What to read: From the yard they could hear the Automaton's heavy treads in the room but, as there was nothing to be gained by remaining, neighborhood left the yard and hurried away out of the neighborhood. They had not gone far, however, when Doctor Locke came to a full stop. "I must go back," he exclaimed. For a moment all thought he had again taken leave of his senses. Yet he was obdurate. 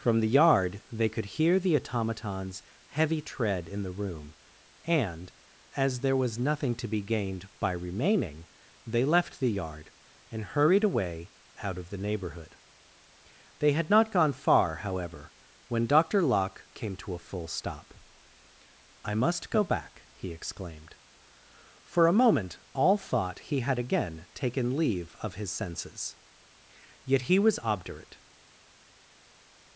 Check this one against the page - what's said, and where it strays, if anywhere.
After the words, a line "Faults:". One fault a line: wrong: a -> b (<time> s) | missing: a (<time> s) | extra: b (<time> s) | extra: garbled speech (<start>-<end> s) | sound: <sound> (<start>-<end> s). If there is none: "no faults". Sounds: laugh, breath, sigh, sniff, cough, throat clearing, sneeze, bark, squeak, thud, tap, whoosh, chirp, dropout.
From the yard they could hear the Automaton's heavy tread in the room and, as there was nothing to be gained by remaining, they left the yard and hurried away out of the neighborhood. They had not gone far, however, when Doctor Locke came to a full stop. "I must go back," he exclaimed. For a moment all thought he had again taken leave of his senses. Yet he was obdurate.
Faults:
wrong: treads -> tread (3.2 s)
wrong: but -> and (4.9 s)
wrong: neighborhood -> they (8.9 s)